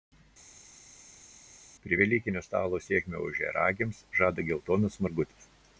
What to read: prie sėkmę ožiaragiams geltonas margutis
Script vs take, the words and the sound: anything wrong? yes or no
yes